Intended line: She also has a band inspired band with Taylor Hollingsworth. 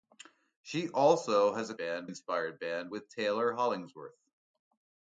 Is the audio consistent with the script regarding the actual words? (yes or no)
yes